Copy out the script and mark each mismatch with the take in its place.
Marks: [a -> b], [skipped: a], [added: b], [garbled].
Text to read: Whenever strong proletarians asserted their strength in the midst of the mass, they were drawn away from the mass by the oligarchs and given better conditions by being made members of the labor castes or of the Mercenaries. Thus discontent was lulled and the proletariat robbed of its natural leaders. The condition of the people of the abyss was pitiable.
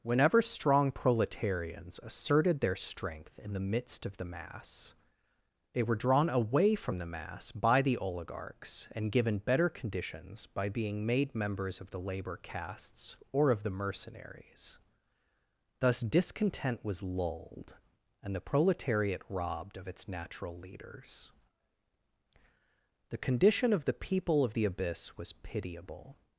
Whenever strong proletarians asserted their strength in the midst of the mass, they were drawn away from the mass by the oligarchs and given better conditions by being made members of the labor castes or of the Mercenaries. Thus discontent was lulled and the proletariat robbed of its natural leaders. The condition of the people of the abyss was pitiable.